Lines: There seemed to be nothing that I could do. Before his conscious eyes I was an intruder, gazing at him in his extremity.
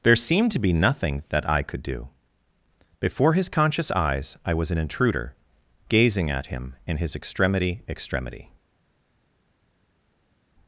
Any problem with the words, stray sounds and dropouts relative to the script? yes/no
yes